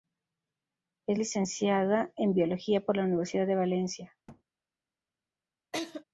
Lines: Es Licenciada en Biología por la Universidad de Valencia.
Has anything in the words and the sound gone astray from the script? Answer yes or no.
yes